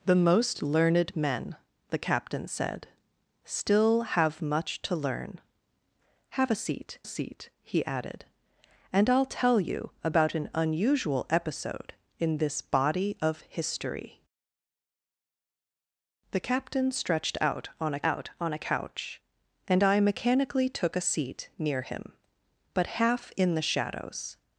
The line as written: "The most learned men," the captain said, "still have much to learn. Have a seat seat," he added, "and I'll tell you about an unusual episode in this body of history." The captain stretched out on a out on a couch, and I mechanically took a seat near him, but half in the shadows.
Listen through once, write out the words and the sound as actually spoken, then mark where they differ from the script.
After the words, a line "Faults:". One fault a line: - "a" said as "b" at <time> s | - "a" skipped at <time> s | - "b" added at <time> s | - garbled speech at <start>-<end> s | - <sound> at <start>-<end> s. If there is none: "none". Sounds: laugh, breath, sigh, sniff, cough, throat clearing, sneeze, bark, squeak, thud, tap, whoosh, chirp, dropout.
"The most learned men," the captain said, "still have much to learn. Have a seat seat," he added, "and I'll tell you about an unusual episode in this body of history." The captain stretched out on a out on a couch, and I mechanically took a seat near him, but half in the shadows.
Faults:
none